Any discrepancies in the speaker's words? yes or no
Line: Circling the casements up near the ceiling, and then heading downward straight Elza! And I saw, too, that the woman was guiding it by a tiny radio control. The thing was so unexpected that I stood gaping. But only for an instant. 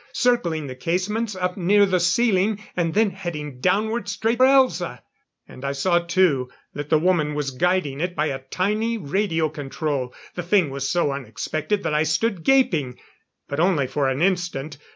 no